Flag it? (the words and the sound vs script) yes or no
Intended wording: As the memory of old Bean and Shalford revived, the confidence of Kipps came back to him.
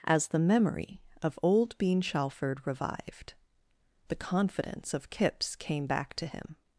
yes